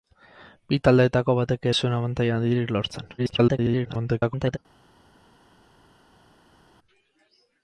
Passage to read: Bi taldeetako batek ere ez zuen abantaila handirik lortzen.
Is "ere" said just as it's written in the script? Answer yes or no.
no